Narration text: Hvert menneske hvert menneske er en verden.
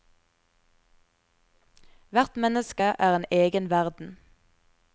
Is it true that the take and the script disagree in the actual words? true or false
true